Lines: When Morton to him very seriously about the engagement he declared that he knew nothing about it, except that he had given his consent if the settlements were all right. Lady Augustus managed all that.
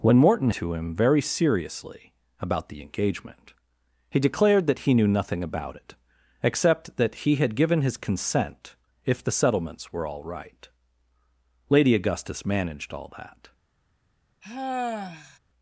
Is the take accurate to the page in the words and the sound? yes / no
no